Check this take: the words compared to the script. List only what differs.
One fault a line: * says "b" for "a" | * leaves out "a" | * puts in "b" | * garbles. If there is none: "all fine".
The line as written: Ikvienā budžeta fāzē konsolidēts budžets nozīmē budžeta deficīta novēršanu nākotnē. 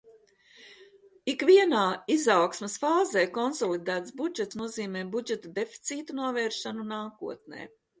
* says "izaugsmes" for "budžeta"